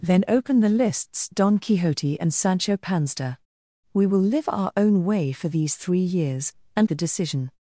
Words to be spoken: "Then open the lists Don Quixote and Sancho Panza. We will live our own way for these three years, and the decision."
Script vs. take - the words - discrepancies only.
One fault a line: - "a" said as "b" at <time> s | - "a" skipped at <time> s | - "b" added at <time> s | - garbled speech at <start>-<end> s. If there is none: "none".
none